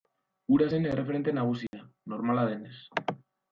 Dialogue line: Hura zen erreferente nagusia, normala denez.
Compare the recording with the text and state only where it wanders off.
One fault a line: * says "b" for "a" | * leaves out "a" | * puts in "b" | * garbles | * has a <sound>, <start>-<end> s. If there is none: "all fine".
* has a dropout, 1.7-1.7 s